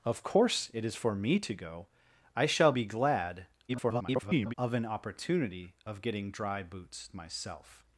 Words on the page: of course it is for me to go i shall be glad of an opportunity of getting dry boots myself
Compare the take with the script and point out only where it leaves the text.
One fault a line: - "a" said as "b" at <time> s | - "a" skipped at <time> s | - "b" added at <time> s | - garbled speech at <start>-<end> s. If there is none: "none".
- garbled speech at 3.7-4.5 s